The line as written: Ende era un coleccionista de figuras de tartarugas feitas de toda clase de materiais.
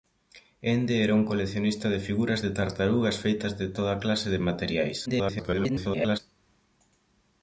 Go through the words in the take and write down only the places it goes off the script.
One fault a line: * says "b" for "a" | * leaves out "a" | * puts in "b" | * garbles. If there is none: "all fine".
* garbles